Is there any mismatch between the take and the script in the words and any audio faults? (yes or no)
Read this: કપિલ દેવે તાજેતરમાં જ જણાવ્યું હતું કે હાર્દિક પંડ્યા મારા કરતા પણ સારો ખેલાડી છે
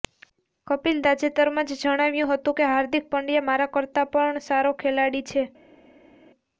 yes